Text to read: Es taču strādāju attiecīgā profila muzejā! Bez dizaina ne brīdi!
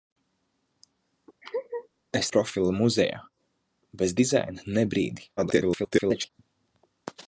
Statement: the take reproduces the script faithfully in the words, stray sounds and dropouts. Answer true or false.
false